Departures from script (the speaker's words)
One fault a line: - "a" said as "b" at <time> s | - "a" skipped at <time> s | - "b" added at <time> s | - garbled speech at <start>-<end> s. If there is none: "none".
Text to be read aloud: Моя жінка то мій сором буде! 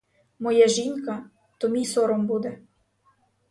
none